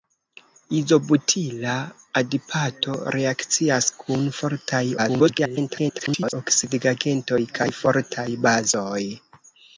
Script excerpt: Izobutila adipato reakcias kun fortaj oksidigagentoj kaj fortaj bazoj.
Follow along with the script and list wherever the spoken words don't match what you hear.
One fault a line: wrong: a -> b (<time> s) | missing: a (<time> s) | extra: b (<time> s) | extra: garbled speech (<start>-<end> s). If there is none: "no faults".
extra: garbled speech (5.0-6.3 s)